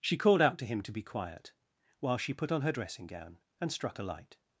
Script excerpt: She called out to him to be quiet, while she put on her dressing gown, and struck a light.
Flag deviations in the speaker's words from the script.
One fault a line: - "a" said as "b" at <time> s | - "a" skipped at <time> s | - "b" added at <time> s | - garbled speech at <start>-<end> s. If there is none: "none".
none